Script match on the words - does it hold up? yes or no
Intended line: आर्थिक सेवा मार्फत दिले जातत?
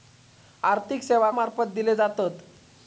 yes